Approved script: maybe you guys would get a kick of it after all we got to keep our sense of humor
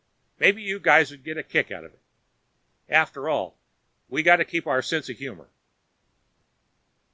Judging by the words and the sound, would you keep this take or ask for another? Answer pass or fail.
fail